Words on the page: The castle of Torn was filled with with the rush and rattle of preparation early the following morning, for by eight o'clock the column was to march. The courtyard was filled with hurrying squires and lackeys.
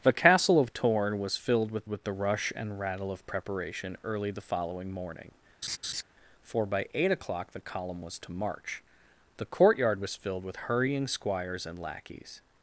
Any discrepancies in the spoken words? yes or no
no